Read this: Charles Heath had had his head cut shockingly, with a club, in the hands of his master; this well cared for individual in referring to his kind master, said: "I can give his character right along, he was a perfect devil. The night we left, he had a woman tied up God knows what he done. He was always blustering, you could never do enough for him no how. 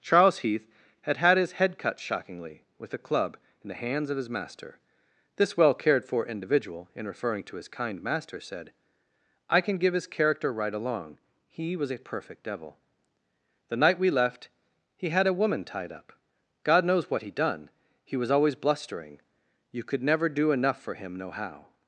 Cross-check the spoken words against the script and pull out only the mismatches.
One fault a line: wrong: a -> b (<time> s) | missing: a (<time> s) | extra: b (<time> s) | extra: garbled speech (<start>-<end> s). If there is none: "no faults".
no faults